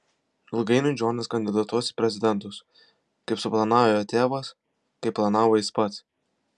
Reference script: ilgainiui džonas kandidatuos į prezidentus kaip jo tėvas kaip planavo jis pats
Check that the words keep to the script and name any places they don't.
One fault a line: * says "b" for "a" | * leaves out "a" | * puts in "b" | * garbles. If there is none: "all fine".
* puts in "suplanavo"